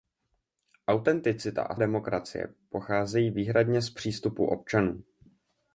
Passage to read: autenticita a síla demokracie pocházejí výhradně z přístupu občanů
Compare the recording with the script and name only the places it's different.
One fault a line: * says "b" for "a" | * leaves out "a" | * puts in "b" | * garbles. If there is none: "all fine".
* leaves out "síla"